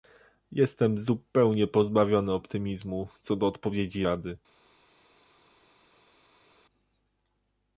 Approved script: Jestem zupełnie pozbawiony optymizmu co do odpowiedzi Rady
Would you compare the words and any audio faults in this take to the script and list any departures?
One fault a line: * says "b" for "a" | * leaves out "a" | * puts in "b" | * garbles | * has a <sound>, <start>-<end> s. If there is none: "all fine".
all fine